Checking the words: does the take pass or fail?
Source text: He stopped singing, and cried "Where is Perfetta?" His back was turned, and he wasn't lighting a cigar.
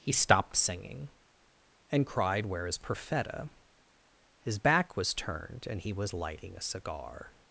fail